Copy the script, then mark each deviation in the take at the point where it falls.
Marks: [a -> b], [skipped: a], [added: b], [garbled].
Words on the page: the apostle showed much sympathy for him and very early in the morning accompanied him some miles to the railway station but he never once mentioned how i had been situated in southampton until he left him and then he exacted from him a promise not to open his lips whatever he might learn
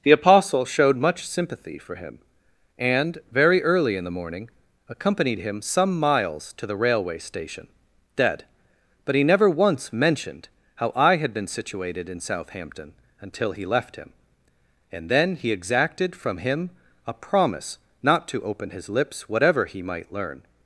the apostle showed much sympathy for him and very early in the morning accompanied him some miles to the railway station [added: dead] but he never once mentioned how i had been situated in southampton until he left him and then he exacted from him a promise not to open his lips whatever he might learn